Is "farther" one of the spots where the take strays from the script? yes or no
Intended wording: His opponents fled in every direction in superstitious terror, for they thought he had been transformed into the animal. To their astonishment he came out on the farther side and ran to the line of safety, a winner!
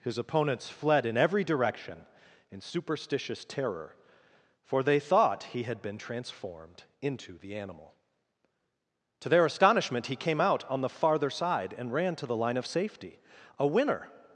no